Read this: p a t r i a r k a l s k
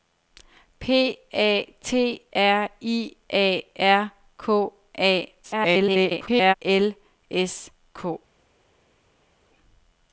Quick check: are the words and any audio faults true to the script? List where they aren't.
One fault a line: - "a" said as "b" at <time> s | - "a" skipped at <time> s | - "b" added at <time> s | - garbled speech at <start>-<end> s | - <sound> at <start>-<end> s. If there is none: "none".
- garbled speech at 5.4-6.5 s